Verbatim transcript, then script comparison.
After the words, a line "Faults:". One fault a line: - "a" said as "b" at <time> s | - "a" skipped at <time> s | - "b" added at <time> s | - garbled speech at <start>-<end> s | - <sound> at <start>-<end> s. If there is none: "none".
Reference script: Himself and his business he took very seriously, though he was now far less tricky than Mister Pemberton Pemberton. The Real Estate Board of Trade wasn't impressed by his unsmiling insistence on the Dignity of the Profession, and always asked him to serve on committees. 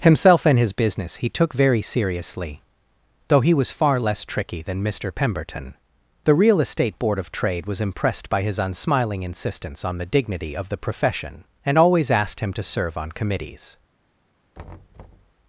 Himself and his business he took very seriously, though he was far less tricky than Mister Pemberton. The Real Estate Board of Trade was impressed by his unsmiling insistence on the Dignity of the Profession, and always asked him to serve on committees.
Faults:
- "now" skipped at 3.7 s
- "Pemberton" skipped at 5.8 s
- "wasn't" said as "was" at 7.7 s
- thud at 14.5-15.3 s